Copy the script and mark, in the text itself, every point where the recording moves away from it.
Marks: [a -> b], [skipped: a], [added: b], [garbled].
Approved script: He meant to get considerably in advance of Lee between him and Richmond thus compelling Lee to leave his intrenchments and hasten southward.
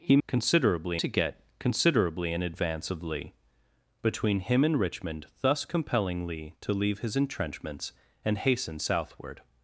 He [meant -> considerably] to get considerably in advance of Lee between him and Richmond thus compelling Lee to leave his intrenchments and hasten southward.